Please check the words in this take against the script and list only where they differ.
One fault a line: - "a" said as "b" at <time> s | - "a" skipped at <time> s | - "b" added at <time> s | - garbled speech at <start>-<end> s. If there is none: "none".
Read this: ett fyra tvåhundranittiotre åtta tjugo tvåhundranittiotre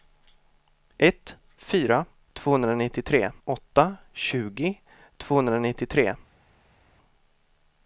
none